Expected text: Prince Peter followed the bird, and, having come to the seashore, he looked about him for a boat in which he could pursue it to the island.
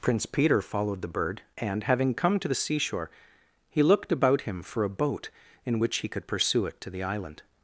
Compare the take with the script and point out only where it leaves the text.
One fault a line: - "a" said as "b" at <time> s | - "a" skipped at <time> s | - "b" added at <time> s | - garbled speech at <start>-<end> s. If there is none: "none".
none